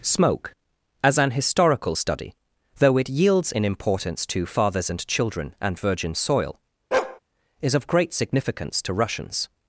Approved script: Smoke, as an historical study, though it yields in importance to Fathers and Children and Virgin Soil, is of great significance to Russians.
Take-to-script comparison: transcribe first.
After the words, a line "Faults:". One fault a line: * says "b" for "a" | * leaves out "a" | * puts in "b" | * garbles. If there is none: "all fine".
Smoke, as an historical study, though it yields in importance to Fathers and Children and Virgin Soil, is of great significance to Russians.
Faults:
all fine